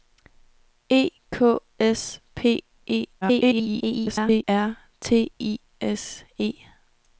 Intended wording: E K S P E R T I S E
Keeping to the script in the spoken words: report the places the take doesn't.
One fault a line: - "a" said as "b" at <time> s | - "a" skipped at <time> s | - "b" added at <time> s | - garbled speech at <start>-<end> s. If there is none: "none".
- garbled speech at 3.2-4.4 s